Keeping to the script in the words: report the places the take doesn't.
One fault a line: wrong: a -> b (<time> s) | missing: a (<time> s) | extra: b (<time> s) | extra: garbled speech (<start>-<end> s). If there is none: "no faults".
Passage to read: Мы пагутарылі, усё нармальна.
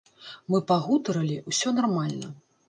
no faults